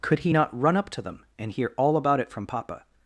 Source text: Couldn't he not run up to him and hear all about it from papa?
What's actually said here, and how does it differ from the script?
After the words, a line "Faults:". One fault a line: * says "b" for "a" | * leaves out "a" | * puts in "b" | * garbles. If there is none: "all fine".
Could he not run up to them and hear all about it from papa?
Faults:
* says "Could" for "Couldn't"
* says "them" for "him"